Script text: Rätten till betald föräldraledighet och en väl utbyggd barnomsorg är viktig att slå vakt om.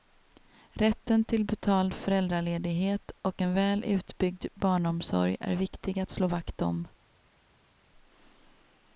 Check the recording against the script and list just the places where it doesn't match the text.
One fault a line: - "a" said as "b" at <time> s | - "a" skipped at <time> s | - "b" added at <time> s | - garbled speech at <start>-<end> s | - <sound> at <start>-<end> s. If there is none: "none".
none